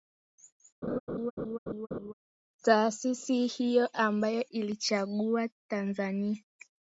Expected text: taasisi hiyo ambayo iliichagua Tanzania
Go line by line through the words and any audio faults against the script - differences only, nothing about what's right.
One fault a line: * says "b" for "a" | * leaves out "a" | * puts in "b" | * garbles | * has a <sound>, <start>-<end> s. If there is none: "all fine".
* has a laugh, 0.8-2.1 s